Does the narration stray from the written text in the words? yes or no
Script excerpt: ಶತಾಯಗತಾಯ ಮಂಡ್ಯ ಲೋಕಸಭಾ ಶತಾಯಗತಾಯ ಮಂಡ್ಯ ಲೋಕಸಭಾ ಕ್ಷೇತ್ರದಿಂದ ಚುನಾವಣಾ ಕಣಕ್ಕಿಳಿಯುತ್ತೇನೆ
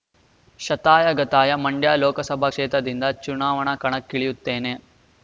yes